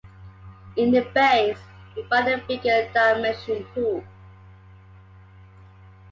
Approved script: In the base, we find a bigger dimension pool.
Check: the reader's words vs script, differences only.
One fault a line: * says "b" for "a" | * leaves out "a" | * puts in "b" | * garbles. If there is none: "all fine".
all fine